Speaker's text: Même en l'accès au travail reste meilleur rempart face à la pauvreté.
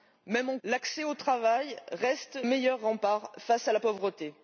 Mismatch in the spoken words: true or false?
false